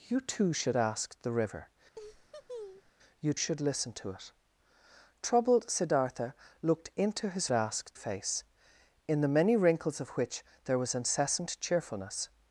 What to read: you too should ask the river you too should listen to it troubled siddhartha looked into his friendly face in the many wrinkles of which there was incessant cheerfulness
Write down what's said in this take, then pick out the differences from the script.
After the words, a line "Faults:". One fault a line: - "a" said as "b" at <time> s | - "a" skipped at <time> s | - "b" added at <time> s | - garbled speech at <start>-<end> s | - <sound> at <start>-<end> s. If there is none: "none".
you too should ask the river you should listen to it troubled siddhartha looked into his ask face in the many wrinkles of which there was incessant cheerfulness
Faults:
- laugh at 1.9-2.9 s
- "too" skipped at 3.3 s
- "friendly" said as "ask" at 7.5 s